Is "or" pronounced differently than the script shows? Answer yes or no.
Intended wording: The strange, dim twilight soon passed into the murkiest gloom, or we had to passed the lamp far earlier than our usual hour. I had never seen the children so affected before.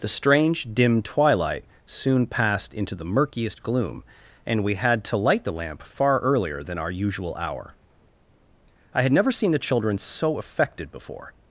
yes